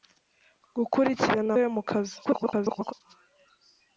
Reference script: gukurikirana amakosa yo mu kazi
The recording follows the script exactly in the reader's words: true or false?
false